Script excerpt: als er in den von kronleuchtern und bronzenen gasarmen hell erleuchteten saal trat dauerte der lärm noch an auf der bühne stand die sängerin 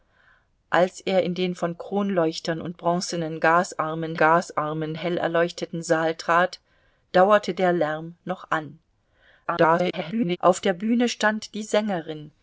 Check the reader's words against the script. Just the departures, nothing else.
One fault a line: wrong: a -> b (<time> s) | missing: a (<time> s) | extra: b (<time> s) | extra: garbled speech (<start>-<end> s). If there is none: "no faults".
extra: gasarmen (4.2 s)
extra: garbled speech (9.4-10.4 s)